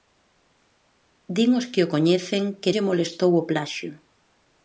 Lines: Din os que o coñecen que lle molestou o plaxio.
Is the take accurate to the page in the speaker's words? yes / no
yes